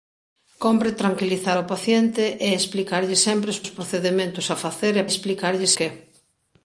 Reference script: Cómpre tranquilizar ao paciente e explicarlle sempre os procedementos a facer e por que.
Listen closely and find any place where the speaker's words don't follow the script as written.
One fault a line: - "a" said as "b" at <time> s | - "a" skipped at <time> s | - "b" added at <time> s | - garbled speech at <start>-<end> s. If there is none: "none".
- "os" added at 3.6 s
- "por" said as "explicarlle" at 5.1 s